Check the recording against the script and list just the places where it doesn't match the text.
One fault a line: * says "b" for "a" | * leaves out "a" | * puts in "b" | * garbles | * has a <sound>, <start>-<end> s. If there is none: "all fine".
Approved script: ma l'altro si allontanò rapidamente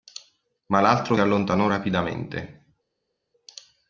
* leaves out "si"